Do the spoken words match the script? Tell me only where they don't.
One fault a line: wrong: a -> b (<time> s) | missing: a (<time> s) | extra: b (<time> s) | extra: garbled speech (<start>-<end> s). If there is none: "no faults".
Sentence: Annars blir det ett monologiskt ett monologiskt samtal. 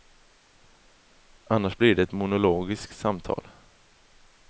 missing: ett monologiskt (3.0 s)